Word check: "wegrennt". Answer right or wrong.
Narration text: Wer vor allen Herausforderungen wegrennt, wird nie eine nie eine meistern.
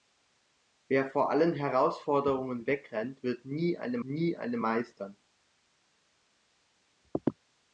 right